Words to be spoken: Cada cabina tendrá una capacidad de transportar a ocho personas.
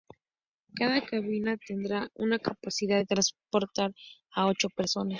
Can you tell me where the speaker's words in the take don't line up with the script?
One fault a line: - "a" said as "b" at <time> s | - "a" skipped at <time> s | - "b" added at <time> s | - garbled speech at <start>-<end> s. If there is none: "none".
none